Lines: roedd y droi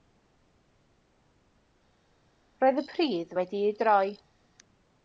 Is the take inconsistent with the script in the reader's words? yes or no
yes